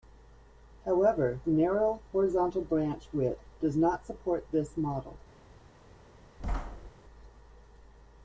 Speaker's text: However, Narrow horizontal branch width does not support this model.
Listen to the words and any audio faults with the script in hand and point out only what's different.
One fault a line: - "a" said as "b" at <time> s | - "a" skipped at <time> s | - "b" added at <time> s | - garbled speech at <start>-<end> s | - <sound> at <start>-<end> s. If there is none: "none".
- thud at 6.4-6.9 s